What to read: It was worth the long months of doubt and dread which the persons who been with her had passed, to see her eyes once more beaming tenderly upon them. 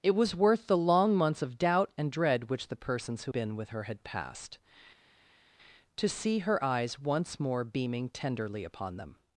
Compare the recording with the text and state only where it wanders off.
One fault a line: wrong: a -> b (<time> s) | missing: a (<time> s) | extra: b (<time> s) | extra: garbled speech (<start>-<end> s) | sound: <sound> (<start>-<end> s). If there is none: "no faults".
no faults